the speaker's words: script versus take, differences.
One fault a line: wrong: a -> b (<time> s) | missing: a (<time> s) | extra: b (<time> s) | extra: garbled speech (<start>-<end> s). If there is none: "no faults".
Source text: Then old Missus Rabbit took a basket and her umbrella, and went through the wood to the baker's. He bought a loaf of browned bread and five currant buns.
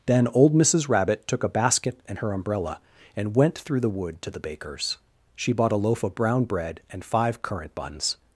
wrong: He -> She (5.3 s)
wrong: browned -> brown (6.2 s)